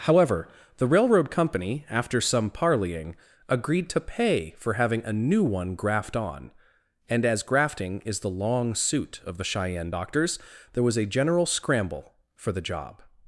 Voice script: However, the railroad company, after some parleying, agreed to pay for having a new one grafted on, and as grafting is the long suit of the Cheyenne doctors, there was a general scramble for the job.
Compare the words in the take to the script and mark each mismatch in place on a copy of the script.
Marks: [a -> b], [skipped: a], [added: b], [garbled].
However, the railroad company, after some parleying, agreed to pay for having a new one [grafted -> graft] on, and as grafting is the long suit of the Cheyenne doctors, there was a general scramble for the job.